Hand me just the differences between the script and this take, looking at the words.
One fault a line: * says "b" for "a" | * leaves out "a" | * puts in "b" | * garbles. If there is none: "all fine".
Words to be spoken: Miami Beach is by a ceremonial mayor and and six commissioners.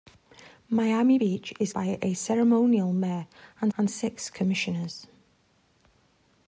all fine